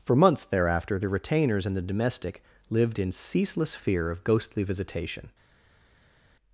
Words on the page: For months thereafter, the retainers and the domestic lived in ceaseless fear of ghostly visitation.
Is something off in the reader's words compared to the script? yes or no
no